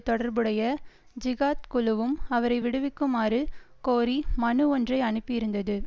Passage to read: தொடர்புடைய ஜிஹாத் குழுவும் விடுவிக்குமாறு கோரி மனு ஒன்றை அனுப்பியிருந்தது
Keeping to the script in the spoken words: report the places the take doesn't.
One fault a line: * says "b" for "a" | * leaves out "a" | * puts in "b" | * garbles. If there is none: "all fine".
* puts in "அவரை"